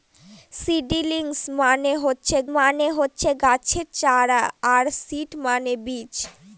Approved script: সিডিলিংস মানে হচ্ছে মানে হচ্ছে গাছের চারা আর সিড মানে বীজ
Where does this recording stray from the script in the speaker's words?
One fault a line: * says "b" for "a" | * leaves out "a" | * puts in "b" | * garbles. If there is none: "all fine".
all fine